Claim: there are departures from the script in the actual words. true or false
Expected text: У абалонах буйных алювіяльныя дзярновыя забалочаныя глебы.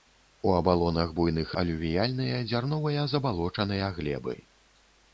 false